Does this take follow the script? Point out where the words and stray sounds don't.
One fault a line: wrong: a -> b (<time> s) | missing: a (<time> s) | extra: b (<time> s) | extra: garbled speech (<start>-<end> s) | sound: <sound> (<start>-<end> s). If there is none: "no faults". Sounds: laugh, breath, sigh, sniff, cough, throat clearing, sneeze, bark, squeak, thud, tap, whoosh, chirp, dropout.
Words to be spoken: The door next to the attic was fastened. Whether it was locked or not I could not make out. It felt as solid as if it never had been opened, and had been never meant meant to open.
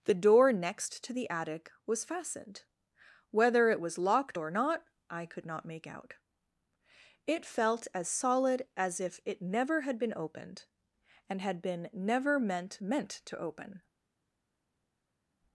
no faults